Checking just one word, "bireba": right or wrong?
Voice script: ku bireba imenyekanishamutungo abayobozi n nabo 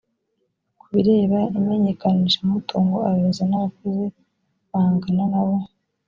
right